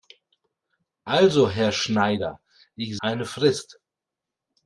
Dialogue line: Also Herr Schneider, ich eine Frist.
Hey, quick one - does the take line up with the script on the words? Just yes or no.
yes